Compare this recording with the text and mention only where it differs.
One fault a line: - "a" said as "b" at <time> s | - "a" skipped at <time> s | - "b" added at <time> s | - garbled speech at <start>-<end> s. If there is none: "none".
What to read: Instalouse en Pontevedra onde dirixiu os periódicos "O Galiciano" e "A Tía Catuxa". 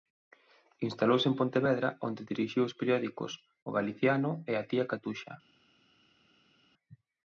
none